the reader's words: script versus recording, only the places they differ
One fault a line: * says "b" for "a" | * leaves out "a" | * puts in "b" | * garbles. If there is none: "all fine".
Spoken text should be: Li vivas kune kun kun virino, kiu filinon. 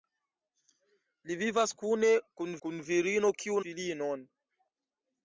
all fine